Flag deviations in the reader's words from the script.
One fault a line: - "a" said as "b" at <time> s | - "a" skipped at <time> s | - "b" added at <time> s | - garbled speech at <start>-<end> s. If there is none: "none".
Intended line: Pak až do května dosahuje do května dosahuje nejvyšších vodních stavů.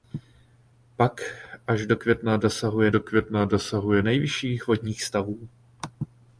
none